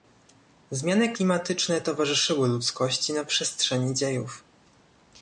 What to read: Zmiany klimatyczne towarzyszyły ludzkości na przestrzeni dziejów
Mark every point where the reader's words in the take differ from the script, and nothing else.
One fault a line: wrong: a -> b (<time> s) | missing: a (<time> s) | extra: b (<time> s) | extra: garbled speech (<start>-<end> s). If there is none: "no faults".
no faults